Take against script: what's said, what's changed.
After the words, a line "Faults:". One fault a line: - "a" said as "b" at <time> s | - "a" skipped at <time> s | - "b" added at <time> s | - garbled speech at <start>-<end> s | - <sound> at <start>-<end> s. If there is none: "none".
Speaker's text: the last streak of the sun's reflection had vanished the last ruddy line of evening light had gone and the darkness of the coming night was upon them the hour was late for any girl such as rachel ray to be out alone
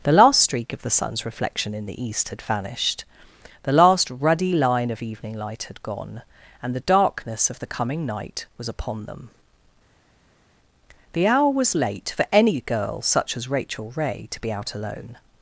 the last streak of the sun's reflection in the east had vanished the last ruddy line of evening light had gone and the darkness of the coming night was upon them the hour was late for any girl such as rachel ray to be out alone
Faults:
- "in the east" added at 1.8 s